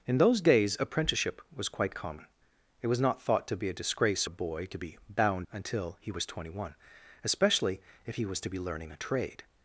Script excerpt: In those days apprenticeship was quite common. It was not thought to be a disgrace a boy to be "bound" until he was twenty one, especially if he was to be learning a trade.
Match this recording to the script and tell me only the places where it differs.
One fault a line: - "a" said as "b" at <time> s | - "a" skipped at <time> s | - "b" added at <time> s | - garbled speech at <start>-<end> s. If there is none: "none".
none